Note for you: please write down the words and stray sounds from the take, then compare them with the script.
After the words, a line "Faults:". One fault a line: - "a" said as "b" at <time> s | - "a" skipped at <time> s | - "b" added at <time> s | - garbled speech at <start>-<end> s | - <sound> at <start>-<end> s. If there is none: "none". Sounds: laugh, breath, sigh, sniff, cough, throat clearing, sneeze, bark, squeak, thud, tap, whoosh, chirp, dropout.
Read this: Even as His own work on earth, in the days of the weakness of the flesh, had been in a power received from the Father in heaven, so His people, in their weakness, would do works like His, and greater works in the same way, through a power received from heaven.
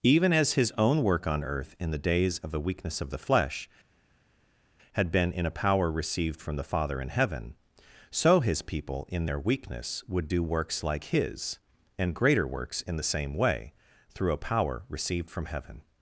Even as His own work on earth, in the days of the weakness of the flesh, had been in a power received from the Father in heaven, so His people, in their weakness, would do works like His, and greater works in the same way, through a power received from heaven.
Faults:
none